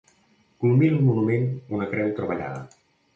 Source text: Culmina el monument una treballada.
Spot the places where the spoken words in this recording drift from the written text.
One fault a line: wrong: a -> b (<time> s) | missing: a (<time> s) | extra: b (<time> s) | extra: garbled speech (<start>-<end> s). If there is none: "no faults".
extra: creu (1.9 s)